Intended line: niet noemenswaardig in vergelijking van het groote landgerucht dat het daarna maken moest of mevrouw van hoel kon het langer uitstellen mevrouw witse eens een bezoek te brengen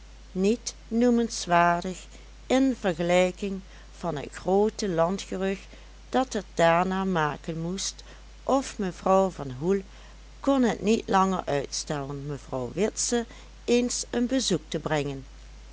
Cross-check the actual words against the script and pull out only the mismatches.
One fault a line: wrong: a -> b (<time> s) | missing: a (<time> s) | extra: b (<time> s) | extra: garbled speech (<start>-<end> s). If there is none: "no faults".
extra: niet (10.8 s)